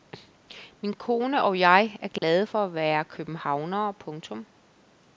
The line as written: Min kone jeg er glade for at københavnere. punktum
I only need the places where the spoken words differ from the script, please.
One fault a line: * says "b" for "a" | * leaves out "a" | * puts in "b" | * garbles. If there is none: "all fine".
* puts in "og"
* puts in "være"